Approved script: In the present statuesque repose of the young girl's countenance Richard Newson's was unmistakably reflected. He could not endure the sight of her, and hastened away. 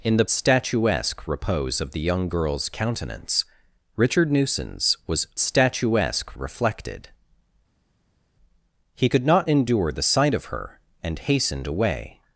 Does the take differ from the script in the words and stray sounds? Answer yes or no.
yes